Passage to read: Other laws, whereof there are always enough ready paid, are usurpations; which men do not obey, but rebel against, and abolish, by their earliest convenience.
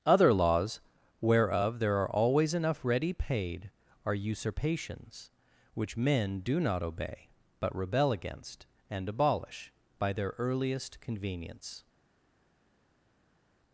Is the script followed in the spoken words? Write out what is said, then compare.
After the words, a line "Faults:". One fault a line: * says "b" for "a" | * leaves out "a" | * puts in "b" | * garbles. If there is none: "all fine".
Other laws, whereof there are always enough ready paid, are usurpations; which men do not obey, but rebel against, and abolish, by their earliest convenience.
Faults:
all fine